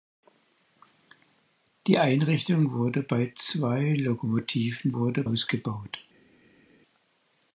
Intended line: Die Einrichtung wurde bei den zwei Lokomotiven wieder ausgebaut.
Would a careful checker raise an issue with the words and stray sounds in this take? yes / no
yes